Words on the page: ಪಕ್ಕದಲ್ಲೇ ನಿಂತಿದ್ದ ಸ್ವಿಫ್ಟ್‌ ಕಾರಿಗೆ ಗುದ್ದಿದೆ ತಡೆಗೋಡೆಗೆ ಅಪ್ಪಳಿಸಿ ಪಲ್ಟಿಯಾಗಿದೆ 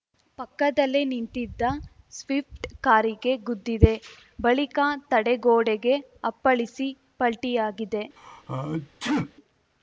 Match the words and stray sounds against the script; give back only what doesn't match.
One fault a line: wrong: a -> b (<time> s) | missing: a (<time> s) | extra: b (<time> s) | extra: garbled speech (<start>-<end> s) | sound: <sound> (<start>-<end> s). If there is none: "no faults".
extra: ಬಳಿಕ (4.4 s)
sound: sneeze (8.2-9.3 s)